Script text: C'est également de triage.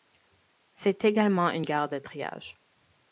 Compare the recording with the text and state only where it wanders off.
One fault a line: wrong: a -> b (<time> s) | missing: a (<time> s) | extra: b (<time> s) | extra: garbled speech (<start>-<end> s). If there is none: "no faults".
extra: une gare (1.5 s)